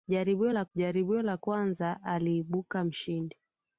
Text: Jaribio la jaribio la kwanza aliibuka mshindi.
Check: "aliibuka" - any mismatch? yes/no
no